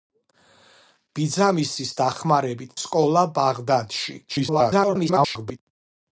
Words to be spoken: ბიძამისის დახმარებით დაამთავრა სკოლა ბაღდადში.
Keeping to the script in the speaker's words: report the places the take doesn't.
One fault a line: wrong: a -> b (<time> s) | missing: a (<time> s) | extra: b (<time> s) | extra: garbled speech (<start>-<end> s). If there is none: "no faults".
missing: დაამთავრა (2.8 s)
extra: garbled speech (4.3-5.6 s)